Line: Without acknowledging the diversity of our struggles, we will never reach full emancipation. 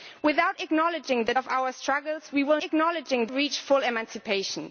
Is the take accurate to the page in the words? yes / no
no